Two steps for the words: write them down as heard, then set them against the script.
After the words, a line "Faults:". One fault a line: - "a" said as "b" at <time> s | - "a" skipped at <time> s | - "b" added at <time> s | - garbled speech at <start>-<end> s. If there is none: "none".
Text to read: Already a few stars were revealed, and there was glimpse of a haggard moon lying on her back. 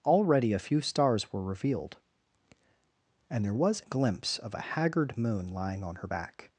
Already a few stars were revealed, and there was glimpse of a haggard moon lying on her back.
Faults:
none